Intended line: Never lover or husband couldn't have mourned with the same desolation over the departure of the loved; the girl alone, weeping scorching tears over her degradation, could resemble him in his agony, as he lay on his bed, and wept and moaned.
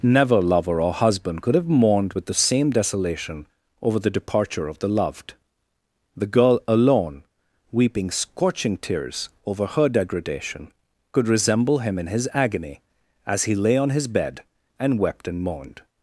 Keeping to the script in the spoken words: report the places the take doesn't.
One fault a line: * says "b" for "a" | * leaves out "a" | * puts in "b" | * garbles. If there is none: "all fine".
* says "could" for "couldn't"